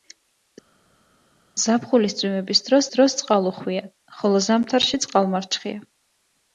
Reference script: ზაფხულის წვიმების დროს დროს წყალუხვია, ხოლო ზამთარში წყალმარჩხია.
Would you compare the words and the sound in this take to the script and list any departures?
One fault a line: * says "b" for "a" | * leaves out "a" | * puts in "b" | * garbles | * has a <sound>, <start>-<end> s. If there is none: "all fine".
all fine